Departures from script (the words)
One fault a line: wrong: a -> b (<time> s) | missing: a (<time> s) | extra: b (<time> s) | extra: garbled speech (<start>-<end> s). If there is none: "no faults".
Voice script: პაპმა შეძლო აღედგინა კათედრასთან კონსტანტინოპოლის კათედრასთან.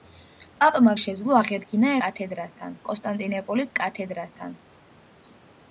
no faults